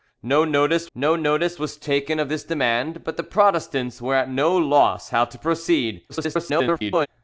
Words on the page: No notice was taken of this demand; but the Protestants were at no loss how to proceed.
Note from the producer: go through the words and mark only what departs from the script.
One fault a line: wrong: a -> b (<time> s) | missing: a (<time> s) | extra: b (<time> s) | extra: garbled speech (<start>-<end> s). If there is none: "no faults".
extra: no notice (1.0 s)
extra: garbled speech (6.1-7.1 s)